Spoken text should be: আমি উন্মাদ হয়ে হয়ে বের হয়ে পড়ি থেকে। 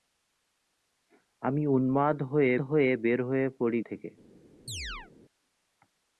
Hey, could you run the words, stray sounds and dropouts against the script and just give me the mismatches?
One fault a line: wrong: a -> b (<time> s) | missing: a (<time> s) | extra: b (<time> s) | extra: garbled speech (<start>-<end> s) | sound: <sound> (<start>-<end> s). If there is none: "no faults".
sound: chirp (4.7-5.1 s)